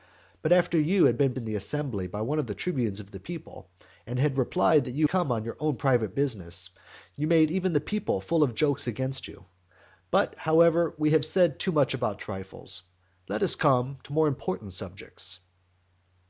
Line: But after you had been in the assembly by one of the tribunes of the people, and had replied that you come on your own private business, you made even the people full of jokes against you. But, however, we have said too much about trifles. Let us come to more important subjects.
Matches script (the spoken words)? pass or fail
pass